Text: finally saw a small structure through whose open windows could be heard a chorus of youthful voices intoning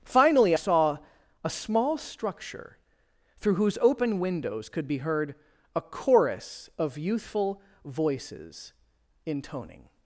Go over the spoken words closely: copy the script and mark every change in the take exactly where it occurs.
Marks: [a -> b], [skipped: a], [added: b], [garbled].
finally saw a small structure through whose open windows could be heard a chorus of youthful voices intoning